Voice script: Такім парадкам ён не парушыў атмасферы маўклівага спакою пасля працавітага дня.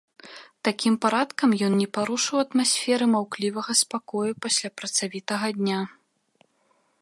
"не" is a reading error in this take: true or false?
false